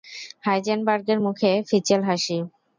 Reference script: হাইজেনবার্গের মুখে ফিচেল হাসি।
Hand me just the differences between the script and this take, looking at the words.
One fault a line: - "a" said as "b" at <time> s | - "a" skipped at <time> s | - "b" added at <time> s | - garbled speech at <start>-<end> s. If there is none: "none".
none